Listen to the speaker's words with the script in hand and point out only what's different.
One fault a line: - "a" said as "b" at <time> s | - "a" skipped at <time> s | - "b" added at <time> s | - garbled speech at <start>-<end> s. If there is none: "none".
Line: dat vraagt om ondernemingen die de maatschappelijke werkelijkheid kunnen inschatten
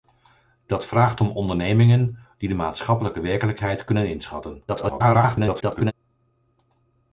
- garbled speech at 4.7-5.9 s